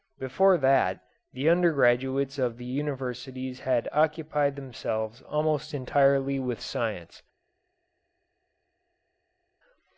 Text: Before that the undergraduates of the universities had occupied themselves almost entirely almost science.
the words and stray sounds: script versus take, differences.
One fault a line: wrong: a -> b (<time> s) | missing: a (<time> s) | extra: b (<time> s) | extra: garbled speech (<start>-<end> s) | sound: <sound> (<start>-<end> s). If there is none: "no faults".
wrong: almost -> with (6.4 s)